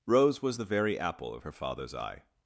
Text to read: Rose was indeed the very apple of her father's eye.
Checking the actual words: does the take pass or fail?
fail